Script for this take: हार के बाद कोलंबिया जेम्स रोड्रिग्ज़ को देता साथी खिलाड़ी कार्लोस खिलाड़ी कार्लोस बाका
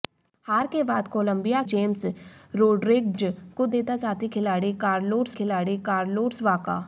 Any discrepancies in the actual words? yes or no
no